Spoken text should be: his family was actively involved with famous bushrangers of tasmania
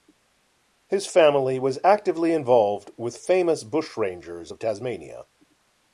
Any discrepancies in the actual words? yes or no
no